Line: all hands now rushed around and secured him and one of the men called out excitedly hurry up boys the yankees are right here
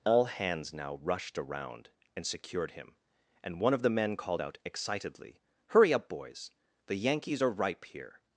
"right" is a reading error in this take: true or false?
true